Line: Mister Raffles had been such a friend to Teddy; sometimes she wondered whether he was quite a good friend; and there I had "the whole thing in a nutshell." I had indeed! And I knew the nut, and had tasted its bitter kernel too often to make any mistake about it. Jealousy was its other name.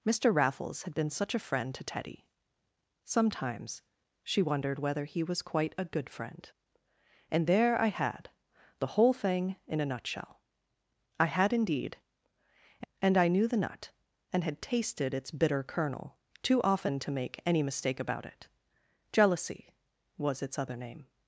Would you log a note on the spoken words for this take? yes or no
no